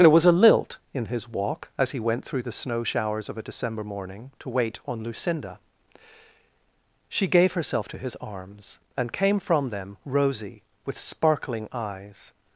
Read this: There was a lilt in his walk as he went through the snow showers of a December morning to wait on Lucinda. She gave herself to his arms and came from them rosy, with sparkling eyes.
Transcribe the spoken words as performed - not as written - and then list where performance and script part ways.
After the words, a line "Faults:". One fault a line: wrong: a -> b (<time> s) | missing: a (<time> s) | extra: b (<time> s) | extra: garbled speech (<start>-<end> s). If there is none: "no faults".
There was a lilt in his walk as he went through the snow showers of a December morning to wait on Lucinda. She gave herself to his arms and came from them rosy, with sparkling eyes.
Faults:
no faults